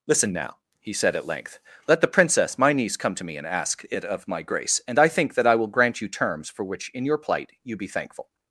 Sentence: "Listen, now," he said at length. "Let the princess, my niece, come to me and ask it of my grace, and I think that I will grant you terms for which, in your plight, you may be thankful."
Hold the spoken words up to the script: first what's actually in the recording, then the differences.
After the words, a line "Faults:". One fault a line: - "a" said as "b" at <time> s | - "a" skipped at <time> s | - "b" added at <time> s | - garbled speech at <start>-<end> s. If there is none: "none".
"Listen, now," he said at length. "Let the princess, my niece, come to me and ask it of my grace, and I think that I will grant you terms for which, in your plight, you be thankful."
Faults:
- "may" skipped at 7.8 s